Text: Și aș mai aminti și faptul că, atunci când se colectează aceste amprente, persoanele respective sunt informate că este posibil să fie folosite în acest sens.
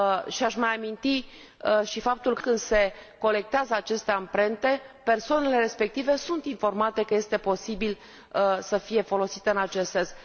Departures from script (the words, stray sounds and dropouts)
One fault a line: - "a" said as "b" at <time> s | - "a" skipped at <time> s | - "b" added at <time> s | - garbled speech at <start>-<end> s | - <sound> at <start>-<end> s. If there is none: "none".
- "atunci" skipped at 2.4 s